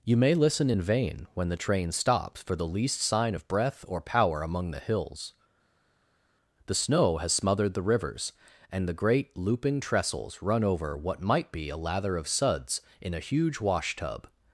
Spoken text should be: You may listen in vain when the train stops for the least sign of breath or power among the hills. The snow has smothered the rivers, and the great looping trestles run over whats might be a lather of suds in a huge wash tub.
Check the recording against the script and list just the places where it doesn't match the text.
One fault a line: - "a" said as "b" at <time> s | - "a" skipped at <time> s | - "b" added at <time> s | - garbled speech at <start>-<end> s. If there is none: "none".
- "whats" said as "what" at 11.0 s